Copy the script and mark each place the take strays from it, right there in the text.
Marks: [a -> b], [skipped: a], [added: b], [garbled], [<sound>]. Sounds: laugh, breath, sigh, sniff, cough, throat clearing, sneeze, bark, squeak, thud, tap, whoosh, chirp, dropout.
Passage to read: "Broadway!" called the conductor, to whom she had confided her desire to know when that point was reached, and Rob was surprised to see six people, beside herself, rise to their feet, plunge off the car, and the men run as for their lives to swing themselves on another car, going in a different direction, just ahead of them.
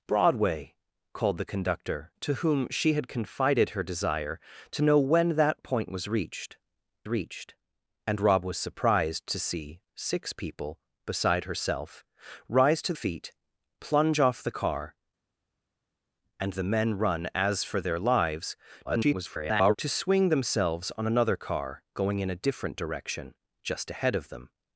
"Broadway!" called the conductor, to whom she had confided her desire to know when that point was reached, [added: reached] and Rob was surprised to see six people, beside herself, rise to [skipped: their] feet, plunge off the car, and the men run as for their lives [garbled] to swing themselves on another car, going in a different direction, just ahead of them.